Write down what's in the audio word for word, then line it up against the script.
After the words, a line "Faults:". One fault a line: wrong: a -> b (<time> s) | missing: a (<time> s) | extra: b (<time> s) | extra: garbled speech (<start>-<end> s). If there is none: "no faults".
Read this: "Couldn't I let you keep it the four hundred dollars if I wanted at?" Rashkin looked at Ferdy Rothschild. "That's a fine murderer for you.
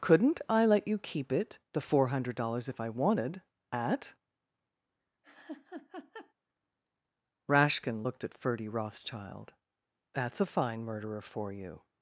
"Couldn't I let you keep it the four hundred dollars if I wanted at?" Rashkin looked at Ferdy Rothschild. "That's a fine murderer for you.
Faults:
no faults